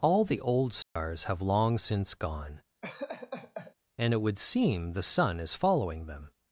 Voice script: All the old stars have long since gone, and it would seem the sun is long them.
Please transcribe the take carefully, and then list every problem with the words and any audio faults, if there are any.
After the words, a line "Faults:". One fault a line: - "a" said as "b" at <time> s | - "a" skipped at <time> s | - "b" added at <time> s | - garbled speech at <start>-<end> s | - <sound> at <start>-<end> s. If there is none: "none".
All the old stars have long since gone, and it would seem the sun is following them.
Faults:
- dropout at 0.8-1.0 s
- laugh at 2.8-3.7 s
- "long" said as "following" at 5.5 s